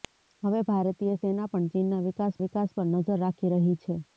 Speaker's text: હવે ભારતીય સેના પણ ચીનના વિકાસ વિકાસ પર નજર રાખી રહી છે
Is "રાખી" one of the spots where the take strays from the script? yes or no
no